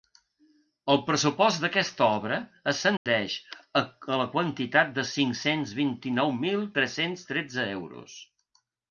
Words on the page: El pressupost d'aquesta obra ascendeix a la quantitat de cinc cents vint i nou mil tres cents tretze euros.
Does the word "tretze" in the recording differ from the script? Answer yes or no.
no